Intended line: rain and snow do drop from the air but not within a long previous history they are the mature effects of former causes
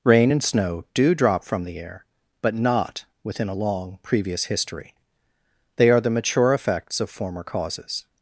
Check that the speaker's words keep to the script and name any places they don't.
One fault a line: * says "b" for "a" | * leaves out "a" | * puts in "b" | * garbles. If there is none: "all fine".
all fine